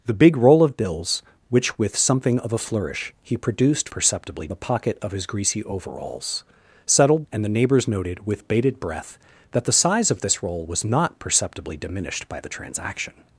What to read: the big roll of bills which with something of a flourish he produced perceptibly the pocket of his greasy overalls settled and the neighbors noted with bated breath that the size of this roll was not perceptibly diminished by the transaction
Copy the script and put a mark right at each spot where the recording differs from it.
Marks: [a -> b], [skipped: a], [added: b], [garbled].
the big roll of bills which with something of a flourish he produced perceptibly the pocket of his greasy overalls settled and the neighbors noted with bated breath that the size of this roll was not perceptibly diminished by the transaction